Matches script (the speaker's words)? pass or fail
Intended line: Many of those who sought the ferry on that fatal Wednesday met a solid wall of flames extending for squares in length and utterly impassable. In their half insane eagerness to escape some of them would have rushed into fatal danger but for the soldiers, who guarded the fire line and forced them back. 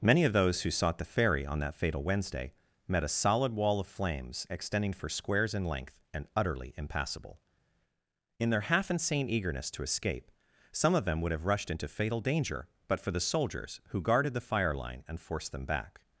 pass